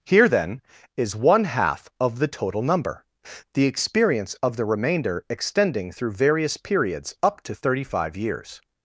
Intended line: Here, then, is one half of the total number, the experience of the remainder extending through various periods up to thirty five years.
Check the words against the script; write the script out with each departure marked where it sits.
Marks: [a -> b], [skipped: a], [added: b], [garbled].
Here, then, is one half of the total number, the experience of the remainder extending through various periods up to thirty five years.